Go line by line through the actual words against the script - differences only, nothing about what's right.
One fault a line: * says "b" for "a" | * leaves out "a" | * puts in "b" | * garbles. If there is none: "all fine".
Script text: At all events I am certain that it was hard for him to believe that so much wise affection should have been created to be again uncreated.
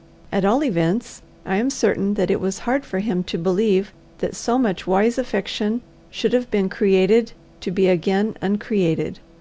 all fine